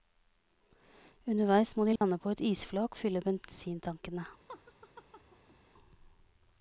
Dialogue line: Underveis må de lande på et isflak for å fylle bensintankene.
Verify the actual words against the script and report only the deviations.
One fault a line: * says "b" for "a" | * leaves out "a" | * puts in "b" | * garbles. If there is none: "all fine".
* leaves out "for"